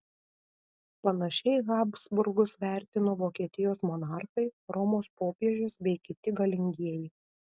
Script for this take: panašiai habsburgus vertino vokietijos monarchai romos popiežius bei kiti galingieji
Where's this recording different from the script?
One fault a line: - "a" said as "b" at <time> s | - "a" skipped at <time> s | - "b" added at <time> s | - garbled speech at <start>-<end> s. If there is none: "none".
none